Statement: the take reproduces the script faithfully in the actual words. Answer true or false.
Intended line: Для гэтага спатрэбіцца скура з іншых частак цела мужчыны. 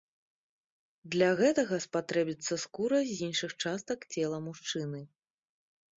true